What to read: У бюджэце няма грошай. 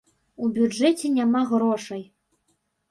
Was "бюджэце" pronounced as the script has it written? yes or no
yes